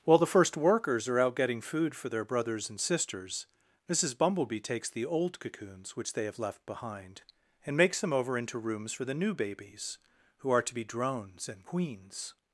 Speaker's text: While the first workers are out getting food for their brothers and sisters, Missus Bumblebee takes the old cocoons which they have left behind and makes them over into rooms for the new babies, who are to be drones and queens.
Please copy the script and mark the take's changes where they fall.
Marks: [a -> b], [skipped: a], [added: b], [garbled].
While the first workers are out getting food for their brothers and sisters, Missus Bumblebee takes the old cocoons which they have left behind and makes them over into rooms for the new babies, who are to be drones and queens.